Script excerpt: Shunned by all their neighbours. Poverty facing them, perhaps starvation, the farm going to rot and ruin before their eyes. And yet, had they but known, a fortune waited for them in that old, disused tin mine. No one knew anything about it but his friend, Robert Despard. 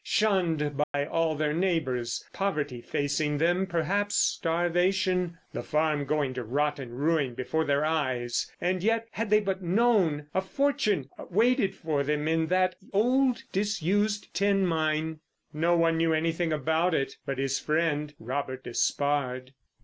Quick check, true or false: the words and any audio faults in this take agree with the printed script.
false